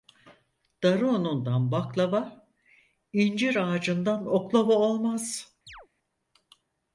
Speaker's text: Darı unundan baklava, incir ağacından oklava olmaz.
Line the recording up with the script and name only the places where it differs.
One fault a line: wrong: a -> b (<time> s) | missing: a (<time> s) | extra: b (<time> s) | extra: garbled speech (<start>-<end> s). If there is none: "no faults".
no faults